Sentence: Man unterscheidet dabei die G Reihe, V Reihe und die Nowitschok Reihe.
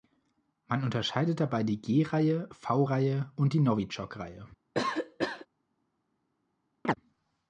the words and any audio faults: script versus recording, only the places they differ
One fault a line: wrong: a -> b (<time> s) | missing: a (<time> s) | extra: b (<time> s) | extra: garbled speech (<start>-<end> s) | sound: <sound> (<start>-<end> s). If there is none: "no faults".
sound: cough (4.7-5.5 s)
sound: chirp (6.8-6.9 s)